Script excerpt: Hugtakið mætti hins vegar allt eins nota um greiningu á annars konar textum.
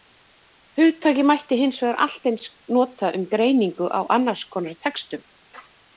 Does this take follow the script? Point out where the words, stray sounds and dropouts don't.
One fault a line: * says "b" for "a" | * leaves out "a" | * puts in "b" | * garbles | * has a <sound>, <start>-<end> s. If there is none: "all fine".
all fine